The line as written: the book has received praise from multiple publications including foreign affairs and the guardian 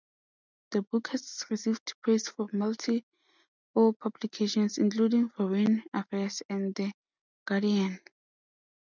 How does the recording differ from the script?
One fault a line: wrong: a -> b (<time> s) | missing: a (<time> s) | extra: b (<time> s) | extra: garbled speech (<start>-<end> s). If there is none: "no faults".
no faults